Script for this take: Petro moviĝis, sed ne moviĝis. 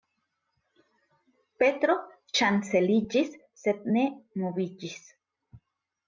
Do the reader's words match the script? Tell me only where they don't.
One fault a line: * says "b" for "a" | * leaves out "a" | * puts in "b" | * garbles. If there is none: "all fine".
* says "ŝanceliĝis" for "moviĝis"